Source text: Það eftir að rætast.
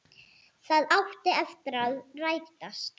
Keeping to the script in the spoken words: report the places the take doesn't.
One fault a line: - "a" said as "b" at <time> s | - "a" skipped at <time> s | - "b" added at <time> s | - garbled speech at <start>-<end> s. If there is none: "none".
- "átti" added at 1.0 s